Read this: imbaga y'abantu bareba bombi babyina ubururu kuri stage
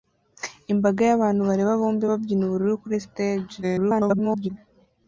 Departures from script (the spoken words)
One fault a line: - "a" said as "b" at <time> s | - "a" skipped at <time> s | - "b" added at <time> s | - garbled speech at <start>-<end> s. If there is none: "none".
- garbled speech at 3.6-4.5 s